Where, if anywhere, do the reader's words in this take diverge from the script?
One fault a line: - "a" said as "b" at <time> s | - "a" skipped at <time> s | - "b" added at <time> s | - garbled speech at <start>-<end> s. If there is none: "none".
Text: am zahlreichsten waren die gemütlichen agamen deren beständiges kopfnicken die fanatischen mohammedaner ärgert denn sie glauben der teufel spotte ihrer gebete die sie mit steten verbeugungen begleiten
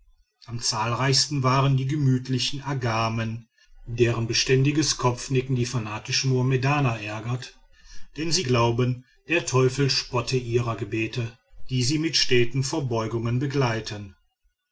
none